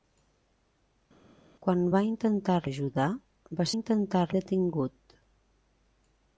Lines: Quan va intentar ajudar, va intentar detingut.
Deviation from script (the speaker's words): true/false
false